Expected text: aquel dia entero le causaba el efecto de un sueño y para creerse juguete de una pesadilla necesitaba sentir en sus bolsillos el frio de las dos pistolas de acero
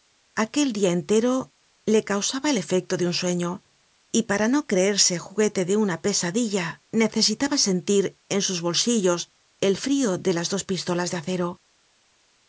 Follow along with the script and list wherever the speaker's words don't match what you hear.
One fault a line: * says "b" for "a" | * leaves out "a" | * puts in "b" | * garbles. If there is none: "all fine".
* puts in "no"